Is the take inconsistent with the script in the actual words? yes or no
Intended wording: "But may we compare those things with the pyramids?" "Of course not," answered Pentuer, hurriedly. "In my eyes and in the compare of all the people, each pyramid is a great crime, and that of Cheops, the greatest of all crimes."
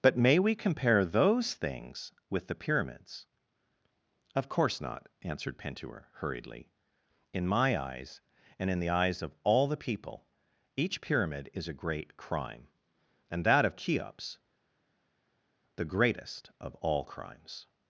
yes